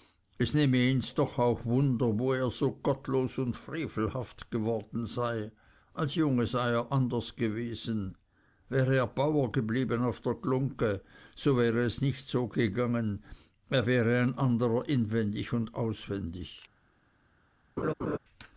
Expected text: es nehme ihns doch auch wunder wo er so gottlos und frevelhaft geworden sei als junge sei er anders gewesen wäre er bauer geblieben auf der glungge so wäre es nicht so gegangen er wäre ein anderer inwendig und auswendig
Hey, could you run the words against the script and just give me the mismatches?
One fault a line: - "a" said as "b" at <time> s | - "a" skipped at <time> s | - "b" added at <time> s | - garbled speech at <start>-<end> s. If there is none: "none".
none